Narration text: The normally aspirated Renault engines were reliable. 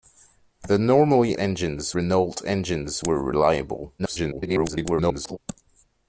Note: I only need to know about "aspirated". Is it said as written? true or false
false